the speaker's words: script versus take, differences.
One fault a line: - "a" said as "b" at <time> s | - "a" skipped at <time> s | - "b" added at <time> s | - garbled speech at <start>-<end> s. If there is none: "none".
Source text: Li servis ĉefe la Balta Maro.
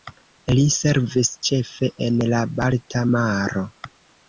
- "en" added at 2.1 s